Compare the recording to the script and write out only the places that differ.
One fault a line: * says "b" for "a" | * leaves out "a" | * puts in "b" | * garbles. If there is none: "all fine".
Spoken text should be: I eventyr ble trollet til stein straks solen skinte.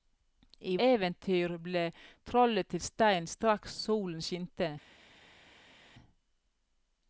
all fine